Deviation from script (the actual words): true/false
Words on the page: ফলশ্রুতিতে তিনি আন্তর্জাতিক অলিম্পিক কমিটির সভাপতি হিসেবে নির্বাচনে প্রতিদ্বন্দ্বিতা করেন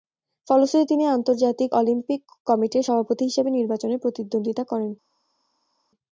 false